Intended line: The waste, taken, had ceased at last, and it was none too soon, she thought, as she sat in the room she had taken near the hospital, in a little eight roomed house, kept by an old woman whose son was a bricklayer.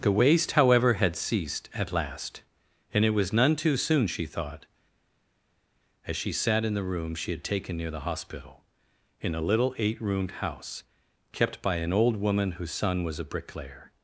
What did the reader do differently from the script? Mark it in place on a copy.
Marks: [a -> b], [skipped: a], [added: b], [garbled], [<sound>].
The waste, [taken, -> however] had ceased at last, and it was none too soon, she thought, as she sat in the room she had taken near the hospital, in a little eight roomed house, kept by an old woman whose son was a bricklayer.